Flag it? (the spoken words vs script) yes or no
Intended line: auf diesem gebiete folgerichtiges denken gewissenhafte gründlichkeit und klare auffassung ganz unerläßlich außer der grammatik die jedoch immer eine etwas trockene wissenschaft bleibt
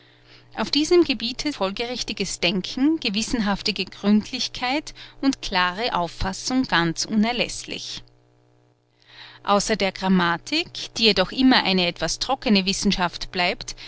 no